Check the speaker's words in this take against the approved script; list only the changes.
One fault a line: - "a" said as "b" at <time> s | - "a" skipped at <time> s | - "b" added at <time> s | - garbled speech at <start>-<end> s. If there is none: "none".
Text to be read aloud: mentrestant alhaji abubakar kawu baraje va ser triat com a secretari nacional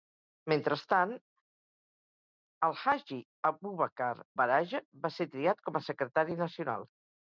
- "kawu" skipped at 4.1 s